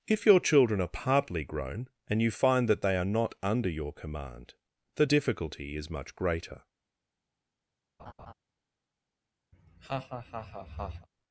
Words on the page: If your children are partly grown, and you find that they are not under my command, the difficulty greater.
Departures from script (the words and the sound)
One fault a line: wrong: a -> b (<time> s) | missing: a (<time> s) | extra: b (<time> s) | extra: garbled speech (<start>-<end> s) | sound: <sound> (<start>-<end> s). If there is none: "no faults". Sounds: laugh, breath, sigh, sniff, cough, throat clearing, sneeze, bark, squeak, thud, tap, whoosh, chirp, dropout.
wrong: my -> your (3.7 s)
extra: is much (5.7 s)
sound: laugh (8.0-8.3 s)
sound: laugh (9.5-11.1 s)